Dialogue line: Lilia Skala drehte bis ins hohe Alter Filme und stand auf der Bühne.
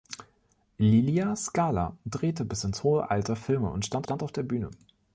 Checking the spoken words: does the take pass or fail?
fail